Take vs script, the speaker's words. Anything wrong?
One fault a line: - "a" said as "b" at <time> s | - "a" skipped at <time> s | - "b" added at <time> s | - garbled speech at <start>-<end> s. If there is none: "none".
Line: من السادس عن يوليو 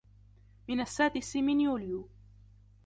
- "عن" said as "من" at 1.4 s